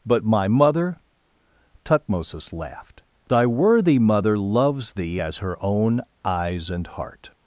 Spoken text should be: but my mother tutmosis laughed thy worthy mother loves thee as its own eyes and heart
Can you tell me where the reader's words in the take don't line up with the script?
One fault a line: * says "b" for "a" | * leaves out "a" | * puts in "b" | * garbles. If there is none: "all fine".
* says "her" for "its"